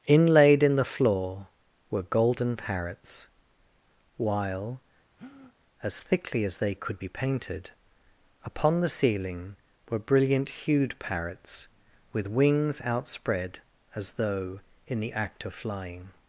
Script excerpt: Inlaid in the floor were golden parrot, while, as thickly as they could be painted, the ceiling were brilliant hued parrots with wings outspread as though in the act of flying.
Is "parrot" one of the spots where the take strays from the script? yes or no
yes